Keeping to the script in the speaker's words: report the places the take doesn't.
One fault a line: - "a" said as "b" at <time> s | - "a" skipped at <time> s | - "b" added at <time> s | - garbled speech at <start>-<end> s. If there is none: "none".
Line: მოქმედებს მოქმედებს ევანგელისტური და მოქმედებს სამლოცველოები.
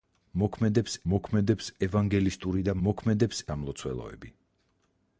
none